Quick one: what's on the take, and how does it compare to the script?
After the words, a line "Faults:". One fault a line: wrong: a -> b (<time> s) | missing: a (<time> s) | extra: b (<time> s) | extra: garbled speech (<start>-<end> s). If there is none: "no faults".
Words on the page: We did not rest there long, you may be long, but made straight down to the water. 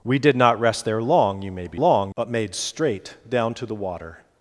We did not rest there long, you may be long, but made straight down to the water.
Faults:
no faults